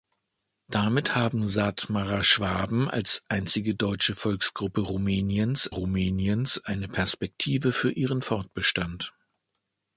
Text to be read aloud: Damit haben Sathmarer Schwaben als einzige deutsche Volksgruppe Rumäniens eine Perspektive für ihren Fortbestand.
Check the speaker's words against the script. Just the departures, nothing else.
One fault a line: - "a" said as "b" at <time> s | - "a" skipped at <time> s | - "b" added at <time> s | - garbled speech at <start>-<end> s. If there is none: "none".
- "Rumäniens" added at 5.7 s